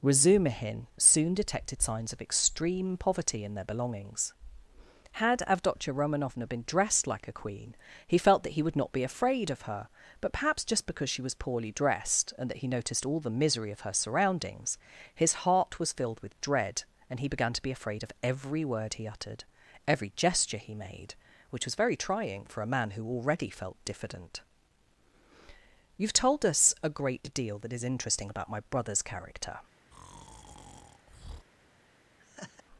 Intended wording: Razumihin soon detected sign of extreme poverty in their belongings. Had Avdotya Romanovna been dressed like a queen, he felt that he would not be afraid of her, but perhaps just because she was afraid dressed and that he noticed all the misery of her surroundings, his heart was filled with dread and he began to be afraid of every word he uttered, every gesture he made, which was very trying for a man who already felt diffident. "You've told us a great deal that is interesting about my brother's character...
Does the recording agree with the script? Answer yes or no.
no